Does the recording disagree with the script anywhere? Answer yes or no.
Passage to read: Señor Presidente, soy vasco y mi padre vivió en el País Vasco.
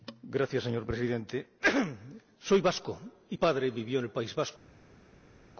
yes